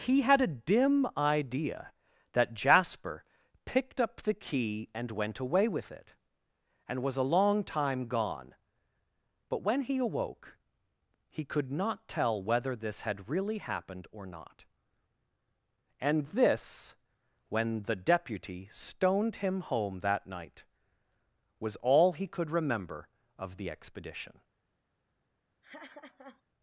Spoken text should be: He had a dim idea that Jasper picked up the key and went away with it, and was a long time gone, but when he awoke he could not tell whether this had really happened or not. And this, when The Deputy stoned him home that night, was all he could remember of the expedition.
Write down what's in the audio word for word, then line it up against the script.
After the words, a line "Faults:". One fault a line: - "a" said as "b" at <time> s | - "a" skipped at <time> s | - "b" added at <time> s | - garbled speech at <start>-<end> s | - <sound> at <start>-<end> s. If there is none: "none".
He had a dim idea that Jasper picked up the key and went away with it, and was a long time gone, but when he awoke he could not tell whether this had really happened or not. And this, when The Deputy stoned him home that night, was all he could remember of the expedition.
Faults:
- laugh at 25.6-26.4 s